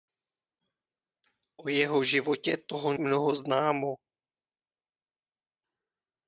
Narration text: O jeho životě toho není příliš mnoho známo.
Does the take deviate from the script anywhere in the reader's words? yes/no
yes